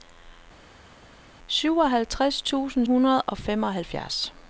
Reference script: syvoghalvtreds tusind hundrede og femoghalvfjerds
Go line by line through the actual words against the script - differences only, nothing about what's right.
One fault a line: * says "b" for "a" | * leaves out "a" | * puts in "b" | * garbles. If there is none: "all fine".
all fine